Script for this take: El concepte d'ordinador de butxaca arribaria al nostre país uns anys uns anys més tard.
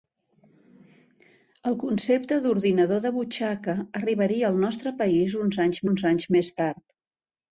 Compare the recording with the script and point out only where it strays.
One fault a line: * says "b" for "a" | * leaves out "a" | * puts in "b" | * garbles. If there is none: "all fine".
all fine